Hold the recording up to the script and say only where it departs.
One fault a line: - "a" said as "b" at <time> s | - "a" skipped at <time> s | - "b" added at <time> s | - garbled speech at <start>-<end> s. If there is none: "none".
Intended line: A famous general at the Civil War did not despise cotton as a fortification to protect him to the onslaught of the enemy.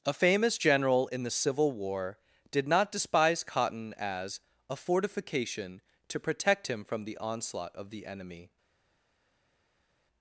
- "at" said as "in" at 1.1 s
- "to" said as "from" at 6.8 s